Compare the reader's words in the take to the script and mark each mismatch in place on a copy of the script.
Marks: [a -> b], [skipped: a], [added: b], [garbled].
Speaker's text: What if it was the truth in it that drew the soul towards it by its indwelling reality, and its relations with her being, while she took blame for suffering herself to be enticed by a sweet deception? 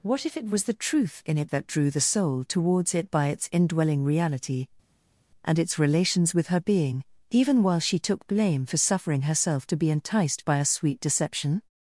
What if it was the truth in it that drew the soul towards it by its indwelling reality, and its relations with her being, [added: even] while she took blame for suffering herself to be enticed by a sweet deception?